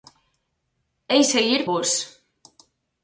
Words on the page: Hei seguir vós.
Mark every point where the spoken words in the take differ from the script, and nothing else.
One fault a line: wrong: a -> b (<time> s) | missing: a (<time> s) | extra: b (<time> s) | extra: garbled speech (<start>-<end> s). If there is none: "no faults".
no faults